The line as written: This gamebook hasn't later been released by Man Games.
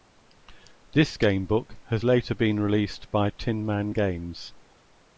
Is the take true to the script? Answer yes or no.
no